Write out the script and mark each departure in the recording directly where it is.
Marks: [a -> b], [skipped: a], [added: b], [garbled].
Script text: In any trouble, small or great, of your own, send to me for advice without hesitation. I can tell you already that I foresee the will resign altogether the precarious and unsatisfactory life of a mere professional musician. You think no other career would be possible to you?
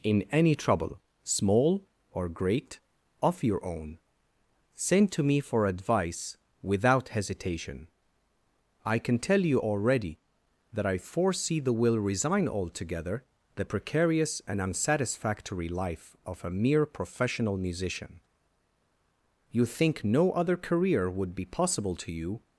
In any trouble, small or great, of your own, send to me for advice without hesitation. I can tell you already that I foresee the will resign altogether the precarious and unsatisfactory life of a mere professional musician. You think no other career would be possible to you?